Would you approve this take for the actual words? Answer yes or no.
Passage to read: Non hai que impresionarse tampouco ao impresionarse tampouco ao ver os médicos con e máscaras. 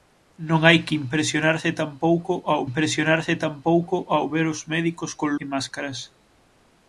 yes